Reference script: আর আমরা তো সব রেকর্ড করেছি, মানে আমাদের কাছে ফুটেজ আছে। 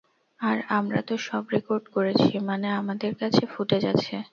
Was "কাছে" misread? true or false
false